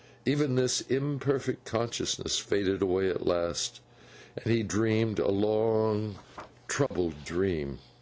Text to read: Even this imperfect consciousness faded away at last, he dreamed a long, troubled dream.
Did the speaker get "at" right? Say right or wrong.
right